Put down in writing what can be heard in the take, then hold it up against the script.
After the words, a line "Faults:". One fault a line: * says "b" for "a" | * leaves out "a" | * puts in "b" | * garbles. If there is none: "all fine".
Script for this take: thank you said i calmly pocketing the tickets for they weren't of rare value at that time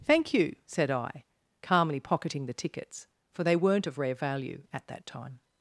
thank you said i calmly pocketing the tickets for they weren't of rare value at that time
Faults:
all fine